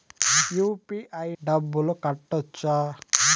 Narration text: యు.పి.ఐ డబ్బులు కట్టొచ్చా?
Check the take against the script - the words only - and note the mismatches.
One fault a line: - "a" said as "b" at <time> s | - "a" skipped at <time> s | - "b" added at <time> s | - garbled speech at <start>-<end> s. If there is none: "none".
none